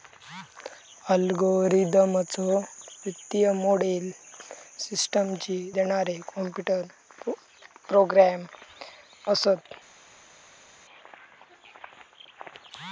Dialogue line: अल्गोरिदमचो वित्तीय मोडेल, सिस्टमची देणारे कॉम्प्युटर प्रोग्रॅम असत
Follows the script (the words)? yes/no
yes